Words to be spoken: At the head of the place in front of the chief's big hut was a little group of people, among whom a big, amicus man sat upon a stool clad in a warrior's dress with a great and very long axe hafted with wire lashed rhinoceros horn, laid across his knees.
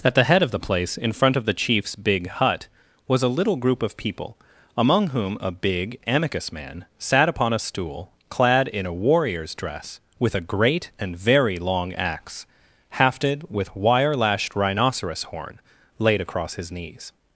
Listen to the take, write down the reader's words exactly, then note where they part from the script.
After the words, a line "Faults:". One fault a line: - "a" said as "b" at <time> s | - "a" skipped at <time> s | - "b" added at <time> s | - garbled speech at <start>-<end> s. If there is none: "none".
At the head of the place in front of the chief's big hut was a little group of people, among whom a big, amicus man sat upon a stool clad in a warrior's dress with a great and very long axe hafted with wire lashed rhinoceros horn, laid across his knees.
Faults:
none